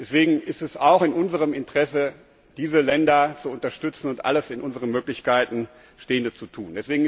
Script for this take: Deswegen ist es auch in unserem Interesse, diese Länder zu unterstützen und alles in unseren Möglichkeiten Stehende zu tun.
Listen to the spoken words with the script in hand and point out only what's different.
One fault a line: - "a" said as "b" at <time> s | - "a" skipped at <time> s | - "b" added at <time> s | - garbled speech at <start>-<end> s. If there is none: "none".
none